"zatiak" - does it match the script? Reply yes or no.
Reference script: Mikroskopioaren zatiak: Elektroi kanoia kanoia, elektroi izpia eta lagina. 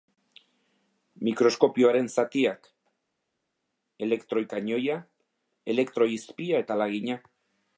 yes